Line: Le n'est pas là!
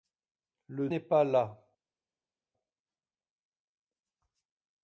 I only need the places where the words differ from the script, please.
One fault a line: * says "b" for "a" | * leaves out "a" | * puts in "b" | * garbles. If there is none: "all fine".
all fine